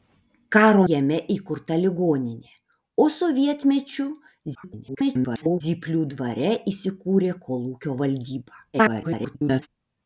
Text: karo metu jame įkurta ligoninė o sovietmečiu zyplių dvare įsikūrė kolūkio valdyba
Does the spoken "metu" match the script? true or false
false